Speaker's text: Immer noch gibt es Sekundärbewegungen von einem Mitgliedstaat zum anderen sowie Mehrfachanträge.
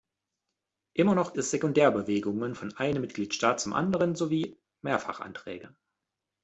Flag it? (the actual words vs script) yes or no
yes